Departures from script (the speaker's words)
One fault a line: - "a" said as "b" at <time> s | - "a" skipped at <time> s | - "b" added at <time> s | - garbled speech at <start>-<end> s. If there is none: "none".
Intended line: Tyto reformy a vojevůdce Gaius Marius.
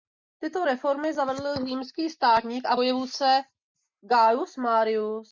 - "zavedl římský státník" added at 1.1 s